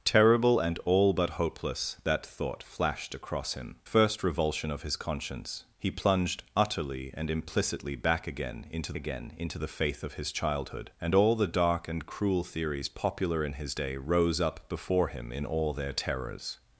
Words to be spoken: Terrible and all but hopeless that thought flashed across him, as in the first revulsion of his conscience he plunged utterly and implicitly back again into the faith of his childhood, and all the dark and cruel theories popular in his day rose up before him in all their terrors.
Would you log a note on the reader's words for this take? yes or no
yes